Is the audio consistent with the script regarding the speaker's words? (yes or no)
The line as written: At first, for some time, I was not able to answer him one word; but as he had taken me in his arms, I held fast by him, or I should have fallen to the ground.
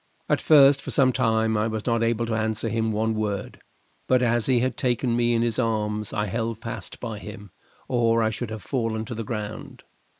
yes